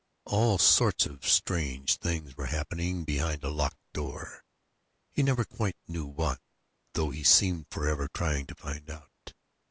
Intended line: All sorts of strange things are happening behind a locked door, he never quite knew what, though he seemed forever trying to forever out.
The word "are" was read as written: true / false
false